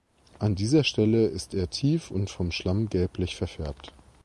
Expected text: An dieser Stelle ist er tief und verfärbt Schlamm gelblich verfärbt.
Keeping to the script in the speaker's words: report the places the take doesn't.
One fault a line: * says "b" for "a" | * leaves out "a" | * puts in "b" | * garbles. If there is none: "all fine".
* says "vom" for "verfärbt"